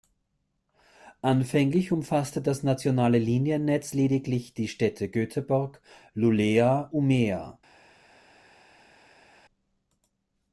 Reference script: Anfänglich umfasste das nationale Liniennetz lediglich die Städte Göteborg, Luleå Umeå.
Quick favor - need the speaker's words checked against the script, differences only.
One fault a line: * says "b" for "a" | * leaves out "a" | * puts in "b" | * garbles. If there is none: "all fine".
all fine